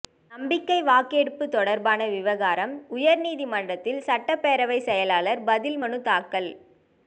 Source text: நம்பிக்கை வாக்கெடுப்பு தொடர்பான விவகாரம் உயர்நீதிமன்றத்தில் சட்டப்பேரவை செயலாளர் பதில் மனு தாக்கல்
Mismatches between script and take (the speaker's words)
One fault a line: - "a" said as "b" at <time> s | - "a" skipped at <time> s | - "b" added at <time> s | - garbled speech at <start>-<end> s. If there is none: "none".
none